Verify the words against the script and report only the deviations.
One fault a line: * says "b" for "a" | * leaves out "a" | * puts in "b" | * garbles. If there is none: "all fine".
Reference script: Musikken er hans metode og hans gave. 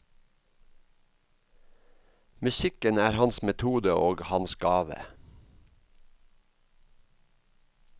all fine